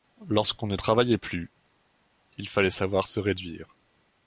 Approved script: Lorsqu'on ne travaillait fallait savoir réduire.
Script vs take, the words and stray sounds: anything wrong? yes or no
yes